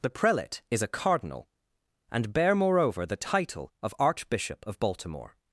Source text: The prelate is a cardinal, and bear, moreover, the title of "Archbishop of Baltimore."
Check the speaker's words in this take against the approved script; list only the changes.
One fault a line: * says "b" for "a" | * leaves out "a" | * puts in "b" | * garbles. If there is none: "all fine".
all fine